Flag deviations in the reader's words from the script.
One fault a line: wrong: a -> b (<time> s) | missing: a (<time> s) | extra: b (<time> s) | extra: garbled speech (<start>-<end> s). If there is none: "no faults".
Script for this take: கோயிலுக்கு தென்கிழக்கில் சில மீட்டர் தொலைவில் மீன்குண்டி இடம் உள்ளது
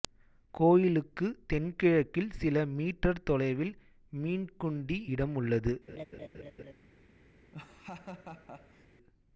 no faults